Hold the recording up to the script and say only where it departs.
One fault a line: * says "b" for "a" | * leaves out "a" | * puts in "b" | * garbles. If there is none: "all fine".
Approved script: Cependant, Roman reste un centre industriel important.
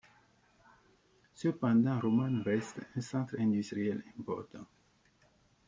all fine